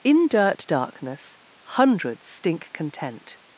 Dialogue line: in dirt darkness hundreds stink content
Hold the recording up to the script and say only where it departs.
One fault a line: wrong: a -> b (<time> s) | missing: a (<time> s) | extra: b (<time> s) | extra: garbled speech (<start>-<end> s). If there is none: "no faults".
no faults